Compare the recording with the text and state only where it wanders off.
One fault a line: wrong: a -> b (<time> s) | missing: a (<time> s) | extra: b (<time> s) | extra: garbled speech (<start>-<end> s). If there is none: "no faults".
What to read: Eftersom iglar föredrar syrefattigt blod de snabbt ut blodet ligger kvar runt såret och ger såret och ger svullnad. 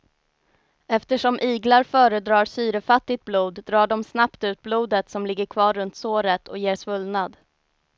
extra: drar (3.6 s)
extra: som (5.1 s)
missing: såret och ger (6.8 s)